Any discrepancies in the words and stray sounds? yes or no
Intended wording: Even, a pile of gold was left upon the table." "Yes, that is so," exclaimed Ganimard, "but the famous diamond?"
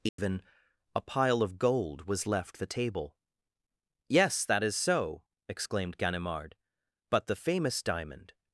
yes